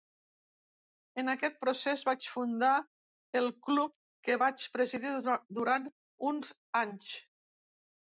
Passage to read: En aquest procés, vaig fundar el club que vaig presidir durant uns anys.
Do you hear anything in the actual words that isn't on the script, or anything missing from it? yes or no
no